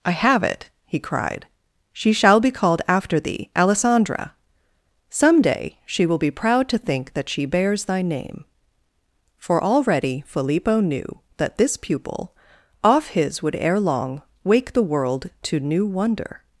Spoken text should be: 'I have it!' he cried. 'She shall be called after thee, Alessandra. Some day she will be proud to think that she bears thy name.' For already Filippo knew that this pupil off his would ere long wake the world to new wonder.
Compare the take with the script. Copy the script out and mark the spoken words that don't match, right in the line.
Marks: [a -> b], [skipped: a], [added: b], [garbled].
'I have it!' he cried. 'She shall be called after thee, Alessandra. Some day she will be proud to think that she bears thy name.' For already Filippo knew that this pupil off his would ere long wake the world to new wonder.